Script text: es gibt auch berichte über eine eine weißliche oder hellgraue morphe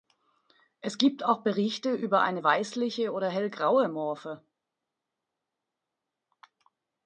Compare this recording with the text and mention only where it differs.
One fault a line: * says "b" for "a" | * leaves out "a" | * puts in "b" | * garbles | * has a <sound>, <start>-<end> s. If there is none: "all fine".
* leaves out "eine"